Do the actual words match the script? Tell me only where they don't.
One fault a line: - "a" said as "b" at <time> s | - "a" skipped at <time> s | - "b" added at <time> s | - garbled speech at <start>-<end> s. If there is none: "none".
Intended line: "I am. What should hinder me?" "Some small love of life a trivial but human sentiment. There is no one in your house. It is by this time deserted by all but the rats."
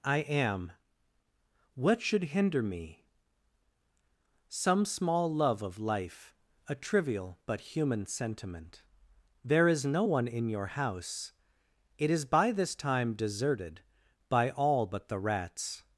none